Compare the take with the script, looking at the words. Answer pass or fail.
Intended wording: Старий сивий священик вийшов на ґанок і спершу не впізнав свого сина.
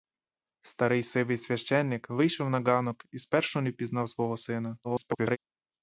fail